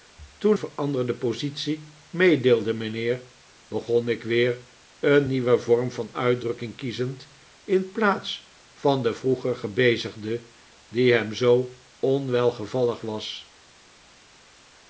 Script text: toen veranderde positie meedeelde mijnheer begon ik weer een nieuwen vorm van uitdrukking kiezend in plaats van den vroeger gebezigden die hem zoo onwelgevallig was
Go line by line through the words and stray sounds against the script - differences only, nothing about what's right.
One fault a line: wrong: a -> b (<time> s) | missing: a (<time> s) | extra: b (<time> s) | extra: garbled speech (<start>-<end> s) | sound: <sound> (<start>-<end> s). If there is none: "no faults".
no faults